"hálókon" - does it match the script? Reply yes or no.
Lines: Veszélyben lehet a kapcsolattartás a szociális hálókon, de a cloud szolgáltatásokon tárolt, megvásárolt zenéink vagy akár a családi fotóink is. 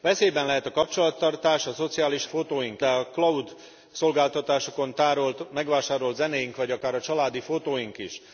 no